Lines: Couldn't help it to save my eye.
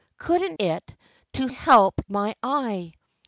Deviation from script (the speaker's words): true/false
true